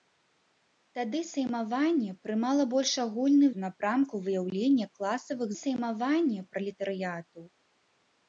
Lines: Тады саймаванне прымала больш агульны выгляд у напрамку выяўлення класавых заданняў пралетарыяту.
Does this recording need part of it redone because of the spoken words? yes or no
yes